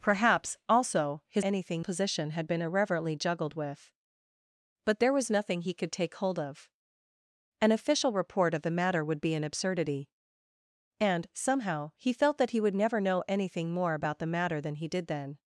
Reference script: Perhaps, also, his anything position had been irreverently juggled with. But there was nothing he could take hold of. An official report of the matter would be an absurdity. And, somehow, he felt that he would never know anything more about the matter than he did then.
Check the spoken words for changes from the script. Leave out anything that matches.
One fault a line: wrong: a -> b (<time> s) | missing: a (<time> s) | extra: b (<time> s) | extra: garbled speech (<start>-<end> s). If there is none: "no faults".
no faults